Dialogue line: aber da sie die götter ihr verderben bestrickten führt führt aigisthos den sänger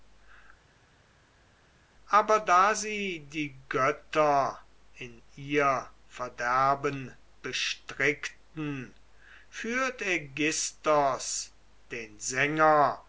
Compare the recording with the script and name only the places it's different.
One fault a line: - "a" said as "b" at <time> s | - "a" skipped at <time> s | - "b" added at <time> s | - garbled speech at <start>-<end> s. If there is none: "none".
- "in" added at 4.9 s
- "führt" skipped at 10.0 s